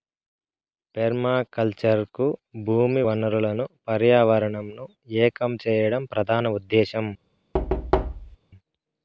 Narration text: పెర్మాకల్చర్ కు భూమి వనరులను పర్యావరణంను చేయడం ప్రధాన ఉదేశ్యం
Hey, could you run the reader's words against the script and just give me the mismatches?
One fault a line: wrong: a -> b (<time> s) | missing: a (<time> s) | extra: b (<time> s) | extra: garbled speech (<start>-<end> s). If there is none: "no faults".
extra: ఏకం (5.2 s)